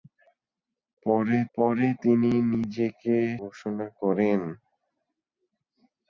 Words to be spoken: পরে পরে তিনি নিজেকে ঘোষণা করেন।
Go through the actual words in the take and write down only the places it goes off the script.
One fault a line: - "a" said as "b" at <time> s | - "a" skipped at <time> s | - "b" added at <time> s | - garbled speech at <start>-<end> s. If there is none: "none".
none